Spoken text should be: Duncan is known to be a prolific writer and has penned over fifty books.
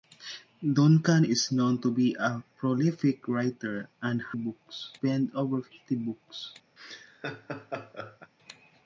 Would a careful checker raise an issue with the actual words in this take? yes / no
yes